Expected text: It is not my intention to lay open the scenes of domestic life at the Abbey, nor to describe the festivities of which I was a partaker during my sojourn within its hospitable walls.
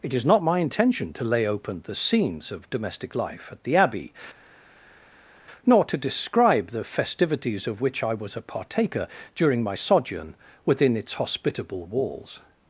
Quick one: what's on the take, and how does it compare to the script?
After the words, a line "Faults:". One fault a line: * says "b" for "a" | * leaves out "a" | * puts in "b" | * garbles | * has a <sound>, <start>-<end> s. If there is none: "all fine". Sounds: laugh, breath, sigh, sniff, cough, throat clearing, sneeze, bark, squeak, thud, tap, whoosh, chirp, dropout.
It is not my intention to lay open the scenes of domestic life at the Abbey, nor to describe the festivities of which I was a partaker during my sojourn within its hospitable walls.
Faults:
all fine